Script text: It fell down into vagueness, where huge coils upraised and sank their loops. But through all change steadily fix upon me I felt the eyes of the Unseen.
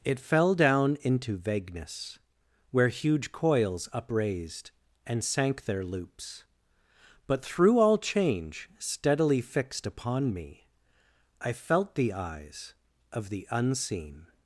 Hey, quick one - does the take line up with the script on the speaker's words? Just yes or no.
no